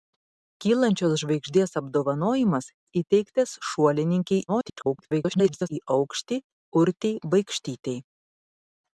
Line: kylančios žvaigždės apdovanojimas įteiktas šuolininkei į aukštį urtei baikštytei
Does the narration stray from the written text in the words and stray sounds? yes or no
yes